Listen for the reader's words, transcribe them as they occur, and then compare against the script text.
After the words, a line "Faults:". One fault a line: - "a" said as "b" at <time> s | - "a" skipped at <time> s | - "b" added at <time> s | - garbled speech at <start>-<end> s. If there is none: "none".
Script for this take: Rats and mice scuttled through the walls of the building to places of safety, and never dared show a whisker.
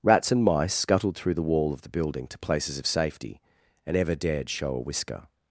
Rats and mice scuttled through the wall of the building to places of safety, and ever dared show a whisker.
Faults:
- "walls" said as "wall" at 1.4 s
- "never" said as "ever" at 4.0 s